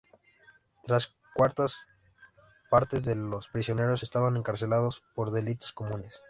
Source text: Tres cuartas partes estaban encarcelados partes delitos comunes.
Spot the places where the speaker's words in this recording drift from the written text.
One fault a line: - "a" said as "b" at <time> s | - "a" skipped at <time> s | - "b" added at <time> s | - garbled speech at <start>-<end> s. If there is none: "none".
- "de los prisioneros" added at 3.0 s
- "partes" said as "por" at 5.1 s